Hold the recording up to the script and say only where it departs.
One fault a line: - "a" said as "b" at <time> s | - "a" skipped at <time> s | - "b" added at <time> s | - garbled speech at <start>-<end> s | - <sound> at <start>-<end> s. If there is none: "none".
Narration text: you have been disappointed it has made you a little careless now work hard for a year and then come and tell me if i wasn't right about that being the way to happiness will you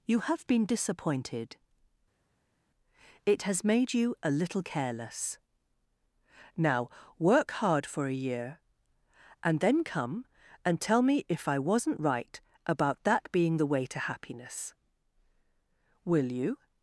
none